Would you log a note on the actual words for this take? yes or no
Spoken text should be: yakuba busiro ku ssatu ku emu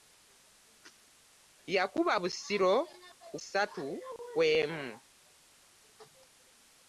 no